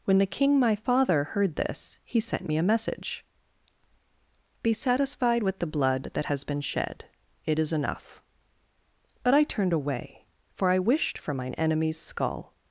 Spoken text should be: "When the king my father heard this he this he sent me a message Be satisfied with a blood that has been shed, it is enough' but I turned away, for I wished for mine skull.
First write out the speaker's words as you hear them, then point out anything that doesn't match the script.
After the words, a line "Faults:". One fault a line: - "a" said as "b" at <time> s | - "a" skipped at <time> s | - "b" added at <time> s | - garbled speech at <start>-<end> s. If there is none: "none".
"When the king my father heard this he sent me a message Be satisfied with the blood that has been shed, it is enough' but I turned away, for I wished for mine enemy's skull.
Faults:
- "this he" skipped at 2.2 s
- "a" said as "the" at 5.6 s
- "enemy's" added at 11.5 s